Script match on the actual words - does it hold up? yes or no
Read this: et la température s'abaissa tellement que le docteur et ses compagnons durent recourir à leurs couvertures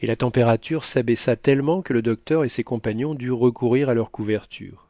yes